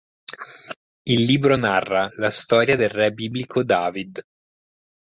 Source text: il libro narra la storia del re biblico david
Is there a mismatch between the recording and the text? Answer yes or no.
no